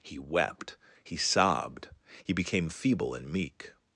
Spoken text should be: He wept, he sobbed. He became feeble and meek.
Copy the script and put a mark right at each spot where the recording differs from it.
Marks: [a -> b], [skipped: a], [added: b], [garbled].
He wept, he sobbed. He became feeble and meek.